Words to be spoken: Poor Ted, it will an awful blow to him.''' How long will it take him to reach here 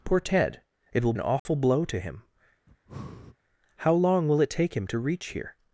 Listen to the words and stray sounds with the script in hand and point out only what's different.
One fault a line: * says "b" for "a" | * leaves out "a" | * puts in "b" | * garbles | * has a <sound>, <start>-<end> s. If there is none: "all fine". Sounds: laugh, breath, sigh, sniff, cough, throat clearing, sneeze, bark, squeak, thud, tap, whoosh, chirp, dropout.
* has a dropout, 1.4-1.5 s
* has a breath, 2.7-3.4 s